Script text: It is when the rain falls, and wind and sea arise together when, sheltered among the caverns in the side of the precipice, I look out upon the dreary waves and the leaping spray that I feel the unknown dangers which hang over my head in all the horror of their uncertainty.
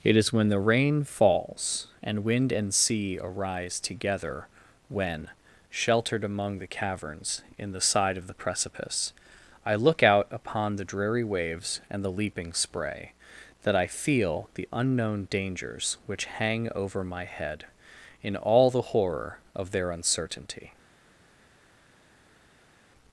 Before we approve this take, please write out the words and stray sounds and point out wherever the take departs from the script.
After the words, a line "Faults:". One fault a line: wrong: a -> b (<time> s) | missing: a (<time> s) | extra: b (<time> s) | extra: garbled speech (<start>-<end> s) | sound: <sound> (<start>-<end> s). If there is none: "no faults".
It is when the rain falls, and wind and sea arise together when, sheltered among the caverns in the side of the precipice, I look out upon the dreary waves and the leaping spray that I feel the unknown dangers which hang over my head in all the horror of their uncertainty.
Faults:
no faults